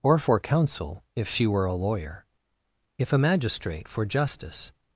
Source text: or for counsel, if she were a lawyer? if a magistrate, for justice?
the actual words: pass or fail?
pass